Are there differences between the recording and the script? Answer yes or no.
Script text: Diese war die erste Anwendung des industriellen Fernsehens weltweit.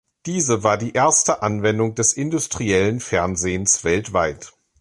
no